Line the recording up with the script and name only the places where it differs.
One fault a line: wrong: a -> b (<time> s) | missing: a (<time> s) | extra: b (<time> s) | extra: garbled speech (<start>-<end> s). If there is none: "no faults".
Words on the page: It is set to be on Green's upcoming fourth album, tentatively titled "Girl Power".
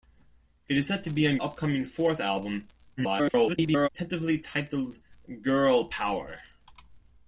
missing: Green's (1.4 s)
extra: garbled speech (3.0-3.9 s)